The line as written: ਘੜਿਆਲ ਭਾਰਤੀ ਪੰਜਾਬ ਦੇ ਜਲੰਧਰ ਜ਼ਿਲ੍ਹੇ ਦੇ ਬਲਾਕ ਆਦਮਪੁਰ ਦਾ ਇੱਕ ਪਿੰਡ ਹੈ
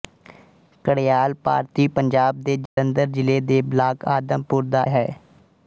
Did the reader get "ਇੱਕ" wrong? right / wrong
wrong